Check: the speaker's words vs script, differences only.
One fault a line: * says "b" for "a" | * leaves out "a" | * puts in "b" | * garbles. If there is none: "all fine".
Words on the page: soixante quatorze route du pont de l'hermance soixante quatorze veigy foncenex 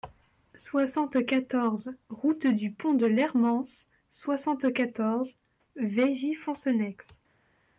all fine